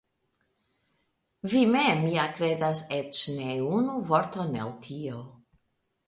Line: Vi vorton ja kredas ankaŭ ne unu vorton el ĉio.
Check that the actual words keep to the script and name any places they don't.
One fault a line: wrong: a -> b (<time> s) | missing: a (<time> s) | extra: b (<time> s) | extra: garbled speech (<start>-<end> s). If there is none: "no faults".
wrong: vorton -> mem (1.7 s)
wrong: ankaŭ -> eĉ (3.0 s)
wrong: ĉio -> tio (4.9 s)